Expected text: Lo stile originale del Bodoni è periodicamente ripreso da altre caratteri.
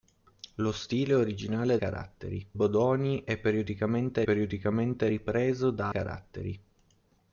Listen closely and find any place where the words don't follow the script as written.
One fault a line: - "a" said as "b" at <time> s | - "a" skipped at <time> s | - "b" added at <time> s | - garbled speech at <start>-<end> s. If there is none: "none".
- "del" said as "caratteri" at 1.8 s
- "periodicamente" added at 4.2 s
- "altre" skipped at 5.9 s